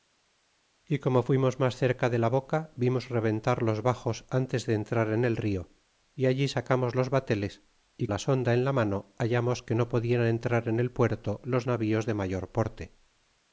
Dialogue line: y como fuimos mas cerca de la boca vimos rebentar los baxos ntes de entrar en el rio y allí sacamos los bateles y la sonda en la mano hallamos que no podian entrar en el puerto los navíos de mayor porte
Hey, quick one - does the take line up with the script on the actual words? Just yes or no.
yes